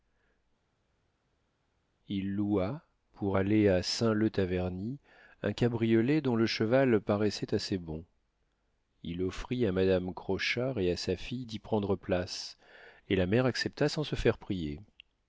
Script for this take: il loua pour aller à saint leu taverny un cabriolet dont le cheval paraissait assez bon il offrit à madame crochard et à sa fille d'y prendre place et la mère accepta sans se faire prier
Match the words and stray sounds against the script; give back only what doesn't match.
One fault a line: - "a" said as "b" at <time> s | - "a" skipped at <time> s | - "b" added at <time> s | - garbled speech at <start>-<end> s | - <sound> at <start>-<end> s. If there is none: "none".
none